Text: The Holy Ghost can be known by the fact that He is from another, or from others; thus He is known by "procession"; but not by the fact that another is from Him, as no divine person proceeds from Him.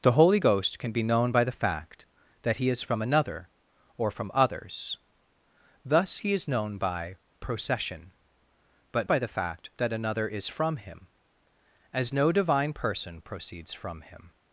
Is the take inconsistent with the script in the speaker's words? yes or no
yes